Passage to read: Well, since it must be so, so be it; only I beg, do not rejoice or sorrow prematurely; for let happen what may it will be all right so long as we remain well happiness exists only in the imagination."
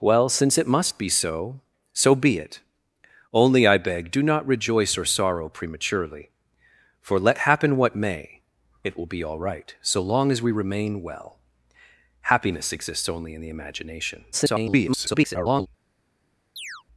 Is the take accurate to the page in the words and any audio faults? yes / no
no